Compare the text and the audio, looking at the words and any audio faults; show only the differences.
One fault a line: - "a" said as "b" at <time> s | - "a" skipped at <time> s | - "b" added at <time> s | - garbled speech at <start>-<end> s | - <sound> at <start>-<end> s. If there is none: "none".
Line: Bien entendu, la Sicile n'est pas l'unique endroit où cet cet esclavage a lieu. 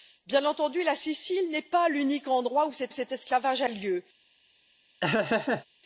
- laugh at 5.0-5.7 s